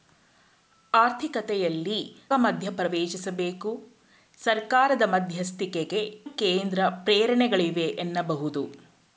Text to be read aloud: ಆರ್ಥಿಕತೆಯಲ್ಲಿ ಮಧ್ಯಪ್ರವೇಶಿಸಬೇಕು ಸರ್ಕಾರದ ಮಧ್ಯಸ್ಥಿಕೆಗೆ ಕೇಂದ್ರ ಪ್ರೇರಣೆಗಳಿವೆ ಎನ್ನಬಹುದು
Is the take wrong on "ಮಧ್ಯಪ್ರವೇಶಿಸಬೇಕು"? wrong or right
right